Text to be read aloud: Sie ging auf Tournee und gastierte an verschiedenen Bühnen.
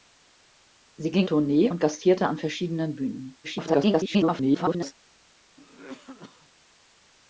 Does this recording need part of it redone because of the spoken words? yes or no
yes